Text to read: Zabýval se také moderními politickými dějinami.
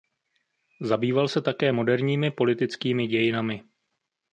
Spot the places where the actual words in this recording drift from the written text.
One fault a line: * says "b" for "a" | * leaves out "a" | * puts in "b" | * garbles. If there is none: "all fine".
all fine